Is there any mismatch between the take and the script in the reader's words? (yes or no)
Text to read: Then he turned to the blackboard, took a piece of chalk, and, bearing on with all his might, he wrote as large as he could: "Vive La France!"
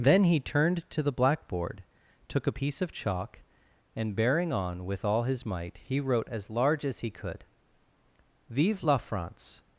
no